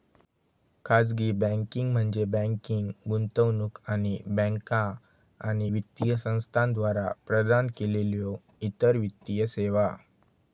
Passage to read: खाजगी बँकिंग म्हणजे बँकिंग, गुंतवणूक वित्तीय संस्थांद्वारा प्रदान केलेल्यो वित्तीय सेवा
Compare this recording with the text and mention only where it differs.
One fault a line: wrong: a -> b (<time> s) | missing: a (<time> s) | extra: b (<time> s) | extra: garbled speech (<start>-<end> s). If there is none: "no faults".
extra: आणि बँका आणि (3.9 s)
extra: इतर (8.6 s)